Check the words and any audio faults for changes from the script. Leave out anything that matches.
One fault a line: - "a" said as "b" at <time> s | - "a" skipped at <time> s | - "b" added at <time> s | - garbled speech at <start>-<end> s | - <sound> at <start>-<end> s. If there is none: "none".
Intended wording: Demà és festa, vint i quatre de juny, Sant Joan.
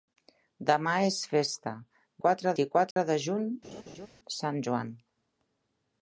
- "vint" said as "quatre" at 2.2 s
- dropout at 2.9-3.0 s
- laugh at 3.6-4.1 s